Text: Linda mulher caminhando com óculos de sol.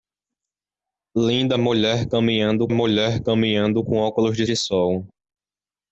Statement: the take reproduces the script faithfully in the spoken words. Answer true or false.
false